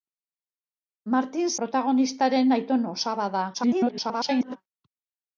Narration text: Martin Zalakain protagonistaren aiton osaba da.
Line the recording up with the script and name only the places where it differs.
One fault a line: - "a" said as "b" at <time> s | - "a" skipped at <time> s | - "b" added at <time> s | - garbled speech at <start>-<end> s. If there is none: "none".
- "Zalakain" skipped at 1.5 s
- garbled speech at 3.5-4.6 s